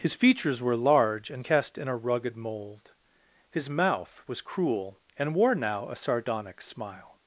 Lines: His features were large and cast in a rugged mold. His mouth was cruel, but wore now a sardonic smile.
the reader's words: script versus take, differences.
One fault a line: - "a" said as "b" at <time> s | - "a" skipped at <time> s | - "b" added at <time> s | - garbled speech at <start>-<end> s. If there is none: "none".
- "but" said as "and" at 5.2 s